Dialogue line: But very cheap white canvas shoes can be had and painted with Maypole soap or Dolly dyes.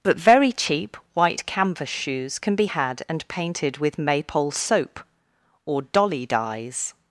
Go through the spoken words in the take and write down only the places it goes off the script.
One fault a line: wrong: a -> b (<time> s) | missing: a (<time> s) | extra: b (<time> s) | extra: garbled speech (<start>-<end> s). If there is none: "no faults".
no faults